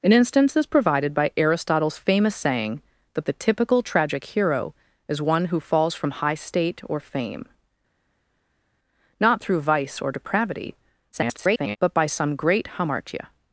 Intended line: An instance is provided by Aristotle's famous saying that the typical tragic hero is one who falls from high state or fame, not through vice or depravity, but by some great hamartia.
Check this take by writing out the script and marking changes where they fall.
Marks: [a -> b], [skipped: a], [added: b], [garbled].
An instance is provided by Aristotle's famous saying that the typical tragic hero is one who falls from high state or fame, not through vice or depravity, [garbled] but by some great hamartia.